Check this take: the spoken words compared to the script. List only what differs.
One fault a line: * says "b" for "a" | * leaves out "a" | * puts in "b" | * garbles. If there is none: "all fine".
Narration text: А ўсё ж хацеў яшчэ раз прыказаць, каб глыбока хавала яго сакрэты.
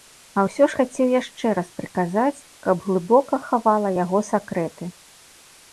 all fine